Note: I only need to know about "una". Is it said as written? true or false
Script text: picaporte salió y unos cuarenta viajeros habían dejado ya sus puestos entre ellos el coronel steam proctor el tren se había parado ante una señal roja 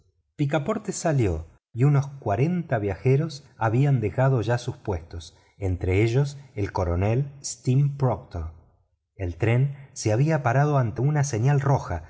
true